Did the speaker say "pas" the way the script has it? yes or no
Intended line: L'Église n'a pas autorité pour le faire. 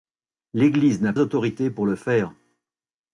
no